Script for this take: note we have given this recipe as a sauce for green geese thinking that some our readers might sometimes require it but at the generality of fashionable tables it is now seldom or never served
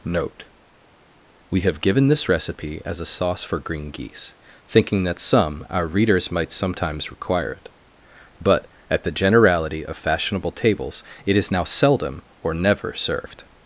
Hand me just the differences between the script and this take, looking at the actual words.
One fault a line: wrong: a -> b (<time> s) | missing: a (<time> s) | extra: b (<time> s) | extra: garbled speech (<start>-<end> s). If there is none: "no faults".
no faults